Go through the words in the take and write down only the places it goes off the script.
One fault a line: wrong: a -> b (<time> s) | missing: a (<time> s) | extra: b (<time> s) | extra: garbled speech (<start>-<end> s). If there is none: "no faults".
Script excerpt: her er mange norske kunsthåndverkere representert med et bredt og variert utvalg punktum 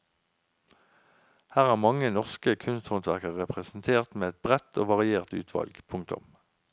no faults